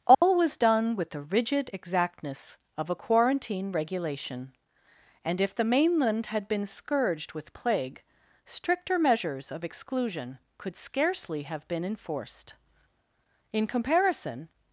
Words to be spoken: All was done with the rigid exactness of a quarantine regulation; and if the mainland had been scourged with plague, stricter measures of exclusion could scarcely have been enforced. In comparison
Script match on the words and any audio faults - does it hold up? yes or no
no